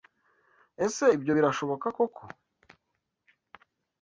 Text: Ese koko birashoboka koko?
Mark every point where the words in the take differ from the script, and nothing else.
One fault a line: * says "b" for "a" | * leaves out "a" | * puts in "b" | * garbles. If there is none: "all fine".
* says "ibyo" for "koko"